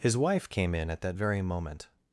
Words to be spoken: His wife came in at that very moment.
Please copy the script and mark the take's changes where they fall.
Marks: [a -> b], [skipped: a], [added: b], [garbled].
His wife came in at that very moment.